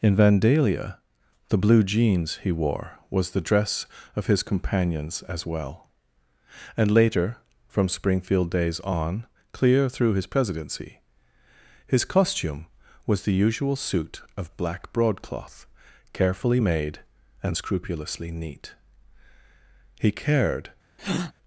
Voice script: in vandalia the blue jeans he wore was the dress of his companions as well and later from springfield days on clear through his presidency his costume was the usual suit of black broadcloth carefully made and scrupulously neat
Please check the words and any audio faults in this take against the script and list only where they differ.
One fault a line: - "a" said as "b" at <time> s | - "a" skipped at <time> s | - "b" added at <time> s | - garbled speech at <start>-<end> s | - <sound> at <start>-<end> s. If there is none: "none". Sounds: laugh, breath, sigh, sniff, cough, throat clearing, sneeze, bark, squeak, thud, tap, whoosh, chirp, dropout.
- "he cared" added at 20.0 s
- breath at 21.0-21.3 s